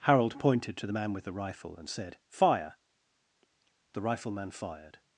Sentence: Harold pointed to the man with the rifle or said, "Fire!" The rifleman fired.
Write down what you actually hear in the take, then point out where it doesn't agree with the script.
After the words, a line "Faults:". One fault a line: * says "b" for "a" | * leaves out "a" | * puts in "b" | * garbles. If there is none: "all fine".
Harold pointed to the man with the rifle and said, "Fire!" The rifleman fired.
Faults:
* says "and" for "or"